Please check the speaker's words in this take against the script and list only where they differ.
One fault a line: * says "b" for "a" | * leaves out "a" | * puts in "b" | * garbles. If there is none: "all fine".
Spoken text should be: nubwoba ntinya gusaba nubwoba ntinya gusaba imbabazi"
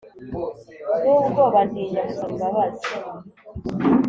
* leaves out "nubwoba ntinya gusaba"